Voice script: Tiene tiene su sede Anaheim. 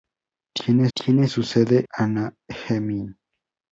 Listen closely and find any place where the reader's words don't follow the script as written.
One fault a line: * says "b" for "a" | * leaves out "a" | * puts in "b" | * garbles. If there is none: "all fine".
all fine